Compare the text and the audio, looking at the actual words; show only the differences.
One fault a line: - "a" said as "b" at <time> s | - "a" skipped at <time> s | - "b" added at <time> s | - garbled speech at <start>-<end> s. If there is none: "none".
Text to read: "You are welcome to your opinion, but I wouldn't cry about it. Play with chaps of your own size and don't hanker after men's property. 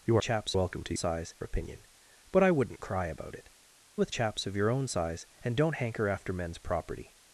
- "are" said as "chaps" at 0.2 s
- "your" said as "size" at 0.9 s
- "Play" skipped at 3.5 s